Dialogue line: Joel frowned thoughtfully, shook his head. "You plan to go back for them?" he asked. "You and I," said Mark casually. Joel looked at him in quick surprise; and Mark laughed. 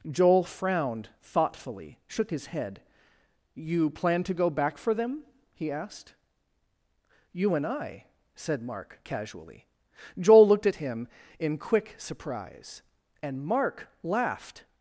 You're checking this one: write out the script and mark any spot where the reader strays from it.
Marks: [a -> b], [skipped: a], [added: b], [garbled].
Joel frowned thoughtfully, shook his head. "You plan to go back for them?" he asked. "You and I," said Mark casually. Joel looked at him in quick surprise; and Mark laughed.